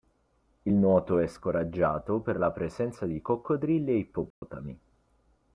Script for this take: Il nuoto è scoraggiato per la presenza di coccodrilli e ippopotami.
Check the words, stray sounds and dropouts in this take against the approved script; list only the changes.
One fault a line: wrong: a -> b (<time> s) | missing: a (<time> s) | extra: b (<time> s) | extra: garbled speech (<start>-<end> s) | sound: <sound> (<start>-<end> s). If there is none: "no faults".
sound: dropout (4.3-4.4 s)